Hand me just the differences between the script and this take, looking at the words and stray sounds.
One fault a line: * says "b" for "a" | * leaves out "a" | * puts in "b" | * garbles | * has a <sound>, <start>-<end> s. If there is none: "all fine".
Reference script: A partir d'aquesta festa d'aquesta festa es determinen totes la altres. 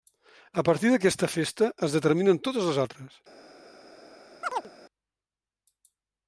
* leaves out "d'aquesta festa"
* says "les" for "la"
* has a chirp, 4.4-4.7 s